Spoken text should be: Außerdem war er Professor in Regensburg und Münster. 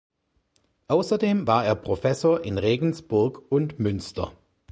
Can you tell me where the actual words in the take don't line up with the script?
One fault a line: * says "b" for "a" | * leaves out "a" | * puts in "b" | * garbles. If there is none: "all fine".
all fine